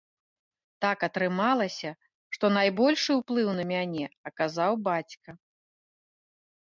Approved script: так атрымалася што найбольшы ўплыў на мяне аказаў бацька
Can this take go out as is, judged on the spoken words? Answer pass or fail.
pass